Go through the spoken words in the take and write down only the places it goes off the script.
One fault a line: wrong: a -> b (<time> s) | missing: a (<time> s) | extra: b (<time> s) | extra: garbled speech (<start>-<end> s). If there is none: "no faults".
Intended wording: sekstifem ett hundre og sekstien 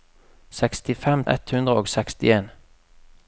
no faults